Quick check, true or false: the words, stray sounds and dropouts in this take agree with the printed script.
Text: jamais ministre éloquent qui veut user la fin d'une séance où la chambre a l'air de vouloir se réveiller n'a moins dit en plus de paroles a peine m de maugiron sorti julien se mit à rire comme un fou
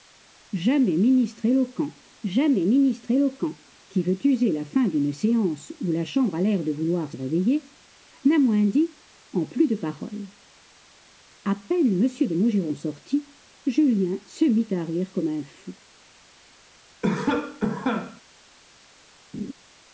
false